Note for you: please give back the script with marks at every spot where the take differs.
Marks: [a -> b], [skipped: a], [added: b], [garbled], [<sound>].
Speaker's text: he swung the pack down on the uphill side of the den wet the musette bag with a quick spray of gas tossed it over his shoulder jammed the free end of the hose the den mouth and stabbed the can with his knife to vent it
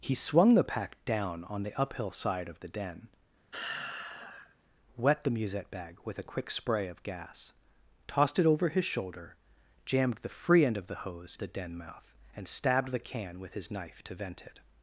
he swung the pack down on the uphill side of the den [sigh] wet the musette bag with a quick spray of gas tossed it over his shoulder jammed the free end of the hose the den mouth and stabbed the can with his knife to vent it